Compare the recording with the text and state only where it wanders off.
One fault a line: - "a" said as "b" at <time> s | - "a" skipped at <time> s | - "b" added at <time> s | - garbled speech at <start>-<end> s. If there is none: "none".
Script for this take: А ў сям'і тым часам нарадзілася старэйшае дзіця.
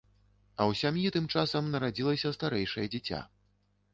none